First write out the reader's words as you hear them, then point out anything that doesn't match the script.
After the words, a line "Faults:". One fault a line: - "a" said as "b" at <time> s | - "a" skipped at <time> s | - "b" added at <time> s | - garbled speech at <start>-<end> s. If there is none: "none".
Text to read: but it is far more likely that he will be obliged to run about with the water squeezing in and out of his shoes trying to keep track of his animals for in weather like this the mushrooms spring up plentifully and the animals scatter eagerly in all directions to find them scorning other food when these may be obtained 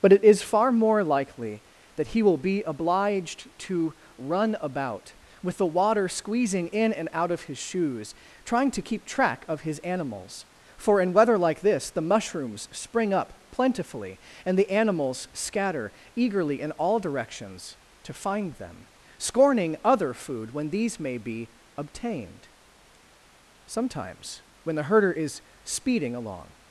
but it is far more likely that he will be obliged to run about with the water squeezing in and out of his shoes trying to keep track of his animals for in weather like this the mushrooms spring up plentifully and the animals scatter eagerly in all directions to find them scorning other food when these may be obtained sometimes when the herder is speeding along
Faults:
- "sometimes when the herder is speeding along" added at 23.7 s